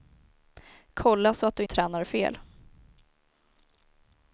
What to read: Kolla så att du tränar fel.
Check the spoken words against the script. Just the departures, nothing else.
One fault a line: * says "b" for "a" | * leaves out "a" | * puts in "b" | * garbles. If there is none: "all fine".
all fine